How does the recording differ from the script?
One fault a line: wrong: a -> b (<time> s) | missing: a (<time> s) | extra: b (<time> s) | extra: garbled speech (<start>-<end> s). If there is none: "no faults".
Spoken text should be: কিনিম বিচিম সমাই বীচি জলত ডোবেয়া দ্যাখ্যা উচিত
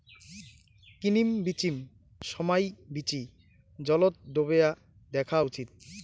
no faults